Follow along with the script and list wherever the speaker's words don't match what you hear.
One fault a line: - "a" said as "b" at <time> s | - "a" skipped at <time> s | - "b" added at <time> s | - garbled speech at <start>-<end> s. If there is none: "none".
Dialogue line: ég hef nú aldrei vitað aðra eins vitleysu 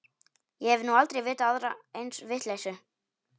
none